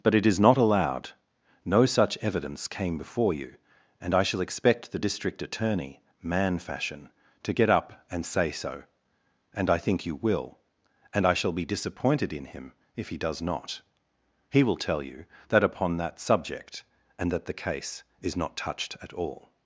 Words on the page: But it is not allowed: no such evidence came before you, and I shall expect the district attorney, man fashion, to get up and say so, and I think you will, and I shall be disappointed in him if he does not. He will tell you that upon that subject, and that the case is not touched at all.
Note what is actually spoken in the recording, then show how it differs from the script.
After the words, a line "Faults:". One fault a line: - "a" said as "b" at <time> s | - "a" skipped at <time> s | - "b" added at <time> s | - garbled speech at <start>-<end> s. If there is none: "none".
But it is not allowed: no such evidence came before you, and I shall expect the district attorney, man fashion, to get up and say so, and I think you will, and I shall be disappointed in him if he does not. He will tell you that upon that subject, and that the case is not touched at all.
Faults:
none